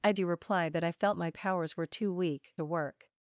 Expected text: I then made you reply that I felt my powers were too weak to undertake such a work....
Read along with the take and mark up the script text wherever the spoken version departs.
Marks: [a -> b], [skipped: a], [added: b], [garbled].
I [skipped: then made] you reply that I felt my powers were too weak [skipped: to undertake such] a work....